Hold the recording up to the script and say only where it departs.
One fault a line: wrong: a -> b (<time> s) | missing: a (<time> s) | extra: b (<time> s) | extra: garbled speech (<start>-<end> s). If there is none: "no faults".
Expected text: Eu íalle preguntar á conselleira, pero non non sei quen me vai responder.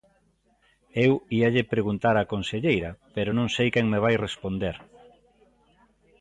missing: non (3.5 s)